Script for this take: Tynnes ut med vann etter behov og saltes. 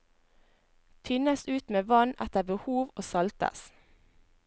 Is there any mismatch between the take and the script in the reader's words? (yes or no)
no